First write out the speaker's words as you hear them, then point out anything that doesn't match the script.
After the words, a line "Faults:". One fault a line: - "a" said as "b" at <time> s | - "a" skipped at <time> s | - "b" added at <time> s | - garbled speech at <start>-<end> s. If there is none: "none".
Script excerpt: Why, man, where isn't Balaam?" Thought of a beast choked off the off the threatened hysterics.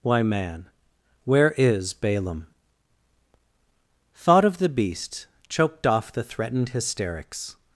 Why, man, where is Balaam?" Thought of the beast choked off the threatened hysterics.
Faults:
- "isn't" said as "is" at 1.6 s
- "a" said as "the" at 4.6 s
- "off the" skipped at 6.2 s